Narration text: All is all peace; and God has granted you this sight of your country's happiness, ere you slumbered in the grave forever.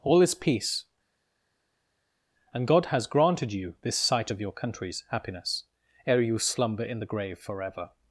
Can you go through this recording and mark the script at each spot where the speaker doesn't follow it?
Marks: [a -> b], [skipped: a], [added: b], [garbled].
All is [skipped: all] peace; and God has granted you this sight of your country's happiness, ere you [slumbered -> slumber] in the grave forever.